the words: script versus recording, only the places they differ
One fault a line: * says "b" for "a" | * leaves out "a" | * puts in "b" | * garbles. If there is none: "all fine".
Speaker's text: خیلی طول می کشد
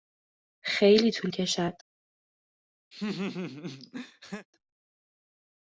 * leaves out "می"